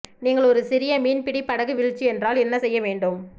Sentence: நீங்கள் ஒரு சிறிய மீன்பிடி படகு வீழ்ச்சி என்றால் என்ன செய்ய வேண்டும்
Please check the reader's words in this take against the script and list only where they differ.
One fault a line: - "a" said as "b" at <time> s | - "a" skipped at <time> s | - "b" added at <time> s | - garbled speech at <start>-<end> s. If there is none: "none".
none